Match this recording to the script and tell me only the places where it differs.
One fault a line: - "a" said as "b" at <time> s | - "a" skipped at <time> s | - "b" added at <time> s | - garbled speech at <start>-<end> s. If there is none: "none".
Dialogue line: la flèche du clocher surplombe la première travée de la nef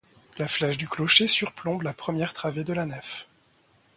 none